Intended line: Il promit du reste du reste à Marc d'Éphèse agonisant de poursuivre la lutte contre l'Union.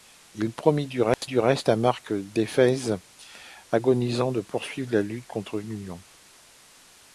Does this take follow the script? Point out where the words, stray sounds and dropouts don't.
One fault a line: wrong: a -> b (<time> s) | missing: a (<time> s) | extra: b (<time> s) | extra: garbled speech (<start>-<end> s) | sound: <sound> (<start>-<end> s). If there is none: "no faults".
sound: dropout (1.1-1.2 s)